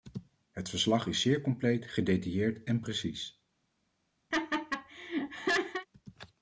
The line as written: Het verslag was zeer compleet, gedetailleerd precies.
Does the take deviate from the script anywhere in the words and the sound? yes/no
yes